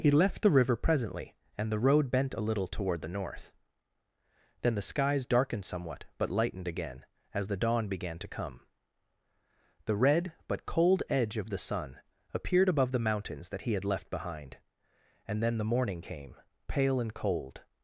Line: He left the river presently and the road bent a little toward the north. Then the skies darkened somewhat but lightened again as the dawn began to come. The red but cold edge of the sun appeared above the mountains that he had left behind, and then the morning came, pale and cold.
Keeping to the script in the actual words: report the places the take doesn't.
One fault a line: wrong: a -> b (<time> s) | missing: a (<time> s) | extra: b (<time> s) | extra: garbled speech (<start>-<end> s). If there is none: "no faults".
no faults